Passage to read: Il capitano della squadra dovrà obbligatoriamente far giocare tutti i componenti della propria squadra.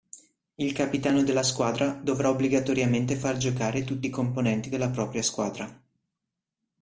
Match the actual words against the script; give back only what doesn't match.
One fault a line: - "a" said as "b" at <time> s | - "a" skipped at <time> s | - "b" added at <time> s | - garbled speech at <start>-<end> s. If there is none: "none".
none